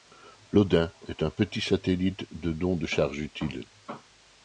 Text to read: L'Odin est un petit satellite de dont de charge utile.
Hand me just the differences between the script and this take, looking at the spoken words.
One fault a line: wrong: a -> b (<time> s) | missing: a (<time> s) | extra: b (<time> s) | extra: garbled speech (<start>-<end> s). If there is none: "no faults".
no faults